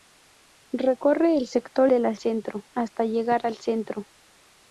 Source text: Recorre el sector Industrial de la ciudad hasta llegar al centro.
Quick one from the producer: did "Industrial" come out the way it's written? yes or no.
no